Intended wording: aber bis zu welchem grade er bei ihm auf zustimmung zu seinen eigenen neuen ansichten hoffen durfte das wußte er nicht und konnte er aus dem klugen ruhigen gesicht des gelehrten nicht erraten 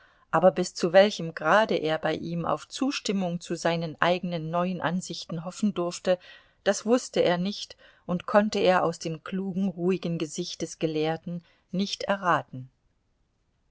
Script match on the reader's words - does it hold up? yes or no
yes